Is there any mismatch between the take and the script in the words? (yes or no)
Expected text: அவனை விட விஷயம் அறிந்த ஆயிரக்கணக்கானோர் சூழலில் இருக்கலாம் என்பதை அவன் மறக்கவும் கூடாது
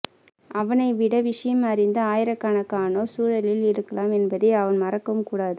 no